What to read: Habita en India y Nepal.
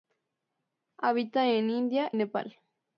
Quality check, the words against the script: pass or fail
fail